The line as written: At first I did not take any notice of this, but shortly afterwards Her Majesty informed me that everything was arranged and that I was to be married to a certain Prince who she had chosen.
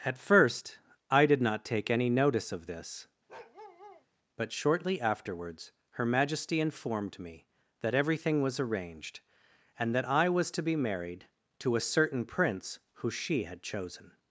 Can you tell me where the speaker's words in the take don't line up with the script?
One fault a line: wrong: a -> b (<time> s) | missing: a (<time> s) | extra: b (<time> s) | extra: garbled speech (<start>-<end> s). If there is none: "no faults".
no faults